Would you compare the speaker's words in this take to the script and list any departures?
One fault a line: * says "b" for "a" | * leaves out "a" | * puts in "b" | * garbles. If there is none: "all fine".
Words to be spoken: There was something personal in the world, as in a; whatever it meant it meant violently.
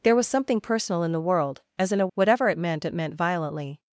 all fine